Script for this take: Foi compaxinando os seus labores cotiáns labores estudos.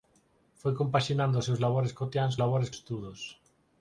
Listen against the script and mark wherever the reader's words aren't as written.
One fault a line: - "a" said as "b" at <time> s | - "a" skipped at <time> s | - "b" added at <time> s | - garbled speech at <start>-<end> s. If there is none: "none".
none